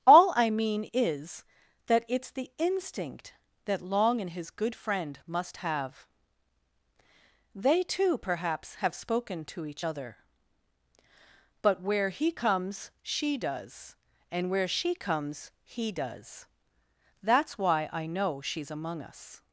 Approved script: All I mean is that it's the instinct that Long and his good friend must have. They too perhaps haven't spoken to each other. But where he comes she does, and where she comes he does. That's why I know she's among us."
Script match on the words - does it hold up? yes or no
no